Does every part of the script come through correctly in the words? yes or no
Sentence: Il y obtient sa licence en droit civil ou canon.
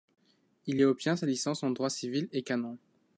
no